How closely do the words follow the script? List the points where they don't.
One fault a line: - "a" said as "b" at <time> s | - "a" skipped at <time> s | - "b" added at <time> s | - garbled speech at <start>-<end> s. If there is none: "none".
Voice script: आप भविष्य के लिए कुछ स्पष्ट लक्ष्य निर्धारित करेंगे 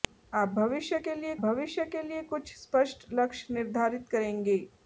- "भविष्य के लिए" added at 1.4 s